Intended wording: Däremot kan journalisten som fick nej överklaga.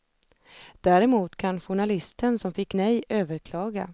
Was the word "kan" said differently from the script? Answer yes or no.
no